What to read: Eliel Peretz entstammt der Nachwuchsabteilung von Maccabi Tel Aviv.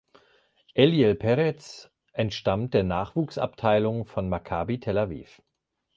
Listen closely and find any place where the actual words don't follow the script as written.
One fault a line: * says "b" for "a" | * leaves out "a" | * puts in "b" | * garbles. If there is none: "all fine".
all fine